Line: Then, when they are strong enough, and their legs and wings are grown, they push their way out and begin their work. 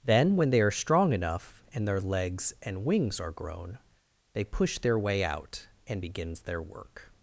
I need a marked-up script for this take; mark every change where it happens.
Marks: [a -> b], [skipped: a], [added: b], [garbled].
Then, when they are strong enough, and their legs and wings are grown, they push their way out and [begin -> begins] their work.